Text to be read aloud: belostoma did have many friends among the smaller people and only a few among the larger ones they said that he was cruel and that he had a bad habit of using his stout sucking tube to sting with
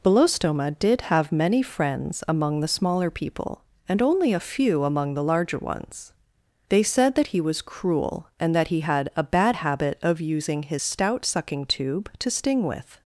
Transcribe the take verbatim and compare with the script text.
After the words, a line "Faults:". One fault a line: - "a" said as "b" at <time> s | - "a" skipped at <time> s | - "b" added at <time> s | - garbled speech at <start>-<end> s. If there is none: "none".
belostoma did have many friends among the smaller people and only a few among the larger ones they said that he was cruel and that he had a bad habit of using his stout sucking tube to sting with
Faults:
none